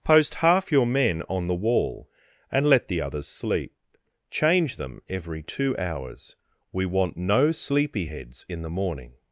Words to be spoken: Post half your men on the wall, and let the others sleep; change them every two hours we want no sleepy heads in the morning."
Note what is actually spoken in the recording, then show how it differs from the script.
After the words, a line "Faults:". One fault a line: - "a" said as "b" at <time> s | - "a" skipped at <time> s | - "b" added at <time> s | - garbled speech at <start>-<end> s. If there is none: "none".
Post half your men on the wall, and let the others sleep; change them every two hours we want no sleepy heads in the morning."
Faults:
none